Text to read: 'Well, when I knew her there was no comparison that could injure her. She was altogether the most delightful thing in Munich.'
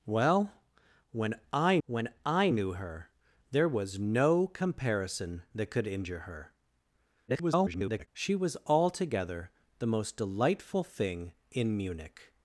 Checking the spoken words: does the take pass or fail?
fail